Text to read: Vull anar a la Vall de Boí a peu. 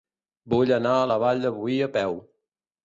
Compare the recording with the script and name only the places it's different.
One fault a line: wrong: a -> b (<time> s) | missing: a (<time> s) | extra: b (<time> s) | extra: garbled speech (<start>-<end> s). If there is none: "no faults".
no faults